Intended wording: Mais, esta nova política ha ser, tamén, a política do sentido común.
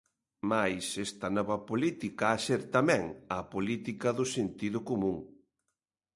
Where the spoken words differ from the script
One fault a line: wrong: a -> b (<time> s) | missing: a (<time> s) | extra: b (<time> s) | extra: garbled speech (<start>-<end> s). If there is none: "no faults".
no faults